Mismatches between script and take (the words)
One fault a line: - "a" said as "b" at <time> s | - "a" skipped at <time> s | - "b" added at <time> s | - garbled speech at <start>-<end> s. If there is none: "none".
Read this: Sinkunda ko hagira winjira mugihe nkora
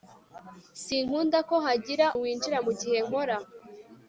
none